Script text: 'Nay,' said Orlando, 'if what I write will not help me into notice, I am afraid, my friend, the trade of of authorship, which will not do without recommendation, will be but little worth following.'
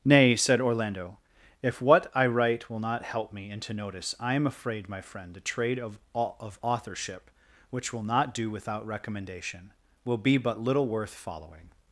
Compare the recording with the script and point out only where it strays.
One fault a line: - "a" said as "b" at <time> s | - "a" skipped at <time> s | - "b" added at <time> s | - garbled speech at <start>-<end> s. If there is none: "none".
none